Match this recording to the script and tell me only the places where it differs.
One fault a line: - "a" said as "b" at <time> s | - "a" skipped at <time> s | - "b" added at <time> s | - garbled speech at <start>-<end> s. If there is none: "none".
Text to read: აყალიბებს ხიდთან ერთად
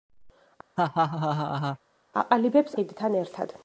none